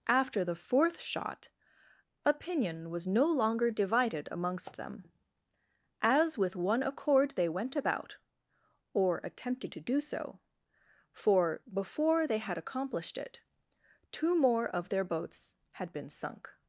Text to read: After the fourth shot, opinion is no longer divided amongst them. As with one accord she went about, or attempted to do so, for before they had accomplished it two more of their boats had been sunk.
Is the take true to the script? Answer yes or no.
no